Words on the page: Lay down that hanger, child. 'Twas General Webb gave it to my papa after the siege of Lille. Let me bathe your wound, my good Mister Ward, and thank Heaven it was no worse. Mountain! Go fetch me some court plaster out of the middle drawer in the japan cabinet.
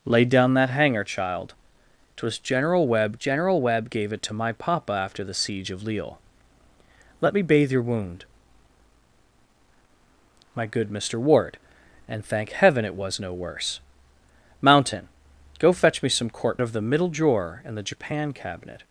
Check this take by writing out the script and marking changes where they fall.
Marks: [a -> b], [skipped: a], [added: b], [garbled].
Lay down that hanger, child. 'Twas General Webb [added: General Webb] gave it to my papa after the siege of Lille. Let me bathe your wound, my good Mister Ward, and thank Heaven it was no worse. Mountain! Go fetch me some court [skipped: plaster out] of the middle drawer in the japan cabinet.